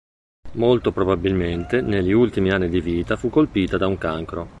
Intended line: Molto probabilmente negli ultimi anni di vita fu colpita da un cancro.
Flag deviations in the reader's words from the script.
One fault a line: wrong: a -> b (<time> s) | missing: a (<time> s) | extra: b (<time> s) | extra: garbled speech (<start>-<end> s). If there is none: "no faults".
no faults